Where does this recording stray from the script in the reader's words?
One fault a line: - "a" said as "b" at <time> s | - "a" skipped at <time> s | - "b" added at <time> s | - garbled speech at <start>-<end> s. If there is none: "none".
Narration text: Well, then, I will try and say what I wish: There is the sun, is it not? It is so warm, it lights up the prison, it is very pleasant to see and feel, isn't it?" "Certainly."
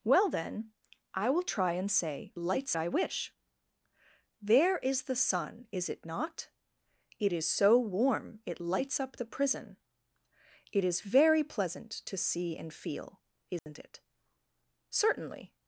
- "what" said as "lights" at 2.4 s